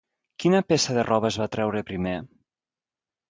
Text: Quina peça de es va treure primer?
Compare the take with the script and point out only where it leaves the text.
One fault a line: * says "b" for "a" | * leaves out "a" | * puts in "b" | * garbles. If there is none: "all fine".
* puts in "roba"